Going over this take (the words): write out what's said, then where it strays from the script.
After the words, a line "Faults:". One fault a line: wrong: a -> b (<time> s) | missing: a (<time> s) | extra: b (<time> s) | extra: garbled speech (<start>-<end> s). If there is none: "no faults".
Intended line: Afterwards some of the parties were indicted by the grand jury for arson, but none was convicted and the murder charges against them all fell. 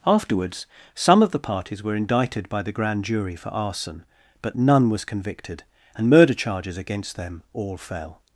Afterwards some of the parties were indicted by the grand jury for arson, but none was convicted and murder charges against them all fell.
Faults:
missing: the (6.1 s)